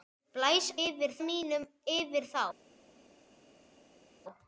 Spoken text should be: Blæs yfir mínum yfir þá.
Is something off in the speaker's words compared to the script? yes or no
no